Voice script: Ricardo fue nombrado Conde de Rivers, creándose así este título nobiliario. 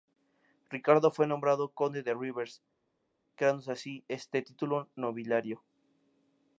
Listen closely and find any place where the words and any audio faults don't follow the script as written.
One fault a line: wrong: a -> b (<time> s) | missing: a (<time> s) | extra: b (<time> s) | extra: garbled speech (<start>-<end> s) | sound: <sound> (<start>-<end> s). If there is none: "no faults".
no faults